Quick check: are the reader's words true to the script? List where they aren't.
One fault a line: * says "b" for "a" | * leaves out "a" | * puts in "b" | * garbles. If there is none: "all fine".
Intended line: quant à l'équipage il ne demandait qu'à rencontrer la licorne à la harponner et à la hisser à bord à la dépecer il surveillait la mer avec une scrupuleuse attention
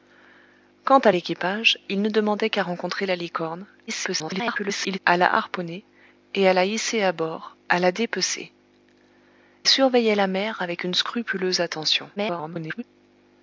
* garbles
* leaves out "il"
* garbles